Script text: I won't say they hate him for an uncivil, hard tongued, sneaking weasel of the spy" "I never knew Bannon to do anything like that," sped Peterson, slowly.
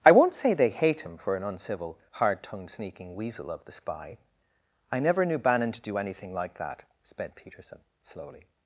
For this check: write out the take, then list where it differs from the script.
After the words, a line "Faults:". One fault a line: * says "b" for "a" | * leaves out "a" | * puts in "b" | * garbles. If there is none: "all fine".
I won't say they hate him for an uncivil, hard tongued, sneaking weasel of the spy" "I never knew Bannon to do anything like that," sped Peterson, slowly.
Faults:
all fine